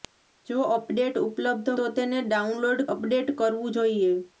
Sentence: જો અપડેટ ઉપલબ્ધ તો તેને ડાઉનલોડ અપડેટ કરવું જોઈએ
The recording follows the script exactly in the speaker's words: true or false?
true